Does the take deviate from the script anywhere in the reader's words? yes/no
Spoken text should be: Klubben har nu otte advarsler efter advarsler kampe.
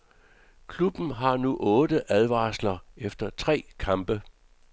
yes